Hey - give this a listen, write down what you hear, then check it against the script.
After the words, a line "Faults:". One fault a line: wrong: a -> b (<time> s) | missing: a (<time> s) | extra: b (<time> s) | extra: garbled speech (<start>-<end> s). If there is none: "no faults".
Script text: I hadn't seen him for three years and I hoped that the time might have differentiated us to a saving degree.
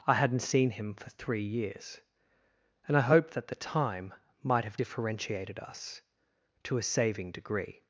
I hadn't seen him for three years and I hoped that the time might have differentiated us to a saving degree.
Faults:
no faults